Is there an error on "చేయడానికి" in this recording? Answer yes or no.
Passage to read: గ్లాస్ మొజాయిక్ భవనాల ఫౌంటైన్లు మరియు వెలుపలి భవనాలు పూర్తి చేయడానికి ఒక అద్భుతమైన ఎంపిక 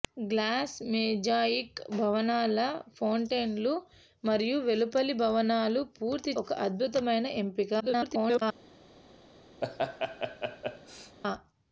yes